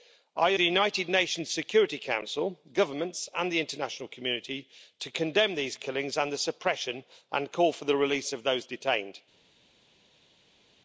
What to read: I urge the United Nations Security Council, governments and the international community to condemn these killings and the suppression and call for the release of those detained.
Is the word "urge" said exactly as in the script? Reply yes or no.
no